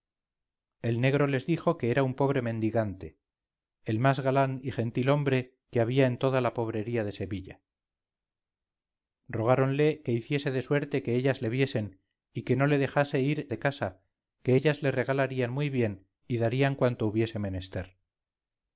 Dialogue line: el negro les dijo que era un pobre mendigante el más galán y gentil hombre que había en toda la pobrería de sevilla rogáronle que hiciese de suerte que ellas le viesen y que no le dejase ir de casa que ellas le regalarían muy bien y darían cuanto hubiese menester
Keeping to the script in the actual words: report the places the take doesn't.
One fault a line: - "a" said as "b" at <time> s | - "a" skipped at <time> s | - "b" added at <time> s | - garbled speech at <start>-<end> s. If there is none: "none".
none